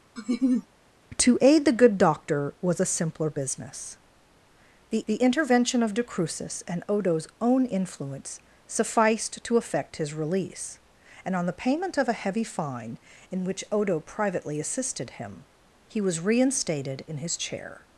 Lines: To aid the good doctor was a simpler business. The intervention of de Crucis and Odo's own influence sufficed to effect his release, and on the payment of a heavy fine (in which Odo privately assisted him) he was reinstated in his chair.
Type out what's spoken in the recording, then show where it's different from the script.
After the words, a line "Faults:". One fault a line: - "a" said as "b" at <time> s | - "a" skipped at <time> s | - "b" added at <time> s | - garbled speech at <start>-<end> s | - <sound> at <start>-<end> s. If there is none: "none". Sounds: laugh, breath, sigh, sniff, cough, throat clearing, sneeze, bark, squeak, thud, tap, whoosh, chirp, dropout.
To aid the good doctor was a simpler business. The the intervention of de Crucis and Odo's own influence sufficed to effect his release, and on the payment of a heavy fine (in which Odo privately assisted him) he was reinstated in his chair.
Faults:
- laugh at 0.2-0.7 s
- "the" added at 5.1 s